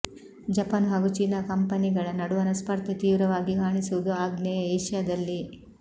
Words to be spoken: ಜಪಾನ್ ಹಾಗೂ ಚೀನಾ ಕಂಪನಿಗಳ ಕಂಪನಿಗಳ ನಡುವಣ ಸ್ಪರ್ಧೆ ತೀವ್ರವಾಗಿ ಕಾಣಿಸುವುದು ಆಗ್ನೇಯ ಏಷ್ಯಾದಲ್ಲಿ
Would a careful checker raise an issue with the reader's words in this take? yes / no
yes